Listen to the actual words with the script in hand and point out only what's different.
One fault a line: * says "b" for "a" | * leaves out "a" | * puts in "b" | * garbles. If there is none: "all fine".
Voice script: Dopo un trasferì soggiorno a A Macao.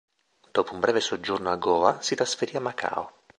* says "breve" for "trasferì"
* puts in "Goa si trasferì"